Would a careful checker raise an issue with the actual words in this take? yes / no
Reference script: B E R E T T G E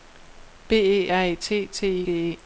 no